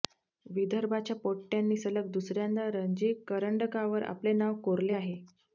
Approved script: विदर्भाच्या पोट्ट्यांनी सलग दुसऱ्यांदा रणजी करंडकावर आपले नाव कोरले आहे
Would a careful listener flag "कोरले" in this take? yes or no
no